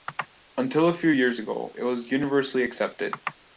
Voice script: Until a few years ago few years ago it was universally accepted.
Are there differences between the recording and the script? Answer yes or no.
yes